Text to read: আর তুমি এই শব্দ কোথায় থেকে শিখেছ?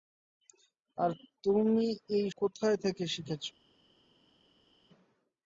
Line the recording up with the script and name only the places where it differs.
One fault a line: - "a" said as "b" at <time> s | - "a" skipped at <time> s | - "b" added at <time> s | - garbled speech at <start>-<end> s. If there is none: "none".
- "শব্দ" skipped at 2.2 s